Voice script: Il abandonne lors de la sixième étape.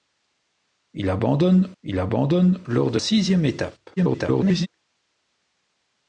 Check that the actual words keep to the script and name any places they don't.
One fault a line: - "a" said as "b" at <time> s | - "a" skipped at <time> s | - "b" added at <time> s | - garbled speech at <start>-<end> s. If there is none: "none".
- "il abandonne" added at 1.8 s
- "la" skipped at 3.0 s
- garbled speech at 4.0-4.7 s